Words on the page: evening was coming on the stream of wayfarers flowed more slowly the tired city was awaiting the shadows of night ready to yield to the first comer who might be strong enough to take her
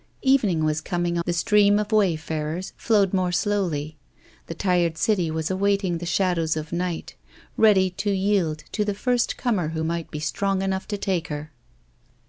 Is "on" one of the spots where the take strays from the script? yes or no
yes